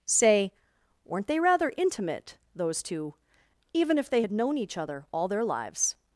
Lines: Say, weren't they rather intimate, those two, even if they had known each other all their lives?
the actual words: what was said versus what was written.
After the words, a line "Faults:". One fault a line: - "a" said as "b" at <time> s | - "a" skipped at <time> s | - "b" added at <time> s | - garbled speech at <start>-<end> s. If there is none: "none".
Say, weren't they rather intimate, those two, even if they had known each other all their lives?
Faults:
none